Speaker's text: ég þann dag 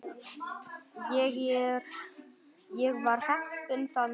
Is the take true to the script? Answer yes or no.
no